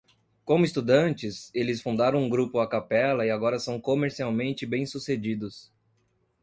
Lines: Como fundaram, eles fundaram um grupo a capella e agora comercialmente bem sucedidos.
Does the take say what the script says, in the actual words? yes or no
no